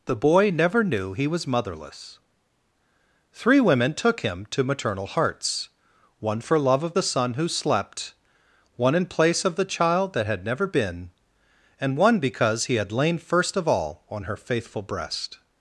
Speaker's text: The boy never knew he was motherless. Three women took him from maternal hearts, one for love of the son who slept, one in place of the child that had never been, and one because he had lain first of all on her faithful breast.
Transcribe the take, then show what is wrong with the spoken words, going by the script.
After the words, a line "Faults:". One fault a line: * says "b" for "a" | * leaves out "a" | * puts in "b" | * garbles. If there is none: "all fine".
The boy never knew he was motherless. Three women took him to maternal hearts, one for love of the son who slept, one in place of the child that had never been, and one because he had lain first of all on her faithful breast.
Faults:
* says "to" for "from"